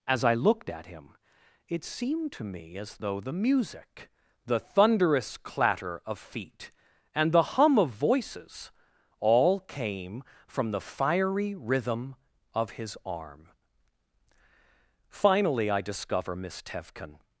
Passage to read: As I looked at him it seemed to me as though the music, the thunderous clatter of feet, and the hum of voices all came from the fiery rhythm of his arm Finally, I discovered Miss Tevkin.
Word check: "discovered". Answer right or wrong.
wrong